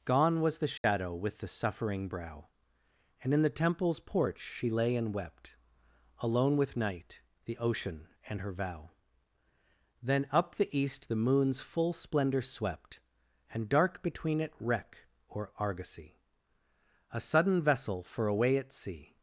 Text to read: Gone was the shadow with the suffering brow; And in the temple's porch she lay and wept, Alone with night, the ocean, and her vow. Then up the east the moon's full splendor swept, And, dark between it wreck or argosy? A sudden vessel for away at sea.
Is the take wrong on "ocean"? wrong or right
right